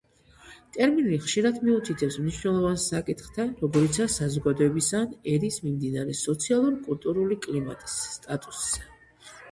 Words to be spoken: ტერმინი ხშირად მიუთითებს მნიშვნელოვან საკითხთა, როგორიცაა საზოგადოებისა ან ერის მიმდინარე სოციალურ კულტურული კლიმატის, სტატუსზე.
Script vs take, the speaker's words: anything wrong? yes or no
no